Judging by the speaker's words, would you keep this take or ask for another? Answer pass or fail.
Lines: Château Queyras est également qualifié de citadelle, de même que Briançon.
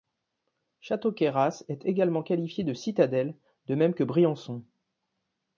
pass